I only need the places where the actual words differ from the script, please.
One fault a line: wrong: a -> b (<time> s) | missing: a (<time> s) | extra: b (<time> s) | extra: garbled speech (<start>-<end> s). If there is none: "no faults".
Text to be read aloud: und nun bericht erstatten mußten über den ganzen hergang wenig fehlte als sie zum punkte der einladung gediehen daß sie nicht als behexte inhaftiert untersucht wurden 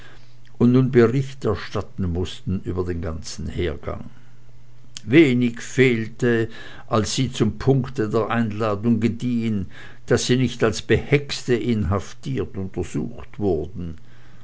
no faults